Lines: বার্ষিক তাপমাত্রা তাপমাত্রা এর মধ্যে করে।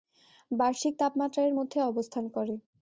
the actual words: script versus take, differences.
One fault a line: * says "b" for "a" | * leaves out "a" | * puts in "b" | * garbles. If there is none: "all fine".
* leaves out "তাপমাত্রা"
* puts in "অবস্থান"